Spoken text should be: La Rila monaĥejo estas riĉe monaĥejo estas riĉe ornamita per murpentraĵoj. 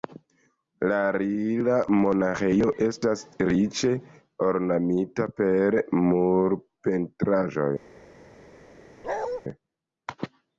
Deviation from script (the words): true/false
true